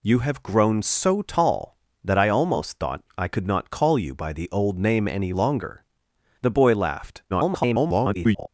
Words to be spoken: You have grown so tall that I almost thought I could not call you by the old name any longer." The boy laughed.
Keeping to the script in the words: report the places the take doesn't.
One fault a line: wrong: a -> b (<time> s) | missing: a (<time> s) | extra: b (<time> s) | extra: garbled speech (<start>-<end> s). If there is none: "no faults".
extra: garbled speech (7.3-8.5 s)